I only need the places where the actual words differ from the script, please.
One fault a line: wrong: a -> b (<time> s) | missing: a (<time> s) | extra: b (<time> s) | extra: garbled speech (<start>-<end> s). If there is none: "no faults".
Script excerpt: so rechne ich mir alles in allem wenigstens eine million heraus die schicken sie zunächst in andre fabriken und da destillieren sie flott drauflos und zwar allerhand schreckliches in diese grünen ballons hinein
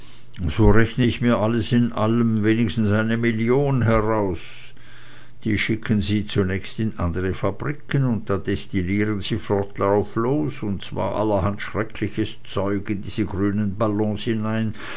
extra: zeug (12.4 s)